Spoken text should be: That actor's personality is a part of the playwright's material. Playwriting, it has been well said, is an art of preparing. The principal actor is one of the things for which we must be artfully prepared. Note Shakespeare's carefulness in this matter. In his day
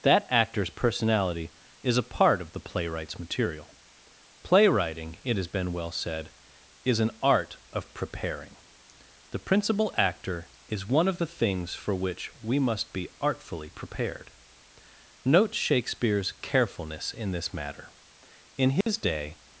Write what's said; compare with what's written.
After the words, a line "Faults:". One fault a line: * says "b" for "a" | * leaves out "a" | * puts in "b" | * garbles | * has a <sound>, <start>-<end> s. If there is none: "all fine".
That actor's personality is a part of the playwright's material. Playwriting, it has been well said, is an art of preparing. The principal actor is one of the things for which we must be artfully prepared. Note Shakespeare's carefulness in this matter. In his day
Faults:
* has a dropout, 18.8-18.9 s